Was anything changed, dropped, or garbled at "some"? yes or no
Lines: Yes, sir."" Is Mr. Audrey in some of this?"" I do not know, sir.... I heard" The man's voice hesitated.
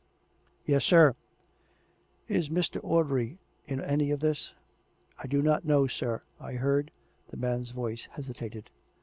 yes